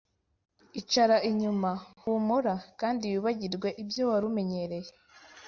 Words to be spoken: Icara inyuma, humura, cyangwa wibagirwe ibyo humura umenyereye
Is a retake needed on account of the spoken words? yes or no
yes